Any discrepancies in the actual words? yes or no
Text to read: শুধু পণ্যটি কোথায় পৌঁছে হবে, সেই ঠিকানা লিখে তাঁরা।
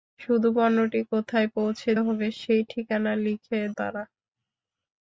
no